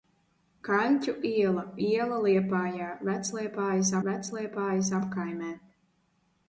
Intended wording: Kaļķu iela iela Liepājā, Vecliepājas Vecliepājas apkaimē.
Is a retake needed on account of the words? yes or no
no